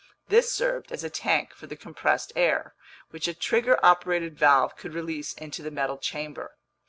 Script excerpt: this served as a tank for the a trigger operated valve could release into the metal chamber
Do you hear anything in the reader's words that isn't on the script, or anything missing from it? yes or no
yes